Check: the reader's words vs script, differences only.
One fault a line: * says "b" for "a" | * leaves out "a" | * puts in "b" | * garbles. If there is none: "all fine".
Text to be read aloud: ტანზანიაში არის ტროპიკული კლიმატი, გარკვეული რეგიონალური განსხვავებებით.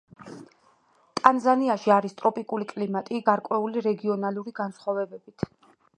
all fine